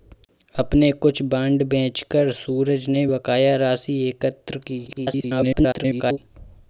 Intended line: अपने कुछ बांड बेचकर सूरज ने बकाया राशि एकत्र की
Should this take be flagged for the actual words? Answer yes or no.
yes